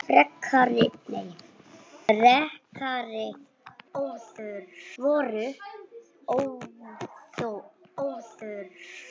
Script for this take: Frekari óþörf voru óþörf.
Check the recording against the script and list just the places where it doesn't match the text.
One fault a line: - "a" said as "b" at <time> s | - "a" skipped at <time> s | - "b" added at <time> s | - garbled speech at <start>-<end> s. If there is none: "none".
none